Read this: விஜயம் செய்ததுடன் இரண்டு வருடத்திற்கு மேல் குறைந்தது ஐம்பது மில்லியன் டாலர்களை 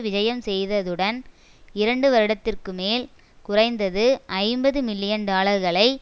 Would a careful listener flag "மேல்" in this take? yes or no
no